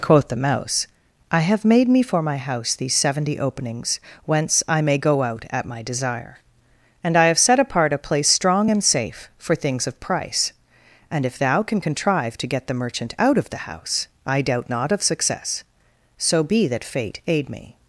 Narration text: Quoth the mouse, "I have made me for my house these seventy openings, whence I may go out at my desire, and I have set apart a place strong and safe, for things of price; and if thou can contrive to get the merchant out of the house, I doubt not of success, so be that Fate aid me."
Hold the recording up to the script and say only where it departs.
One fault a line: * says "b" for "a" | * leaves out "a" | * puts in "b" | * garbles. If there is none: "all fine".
all fine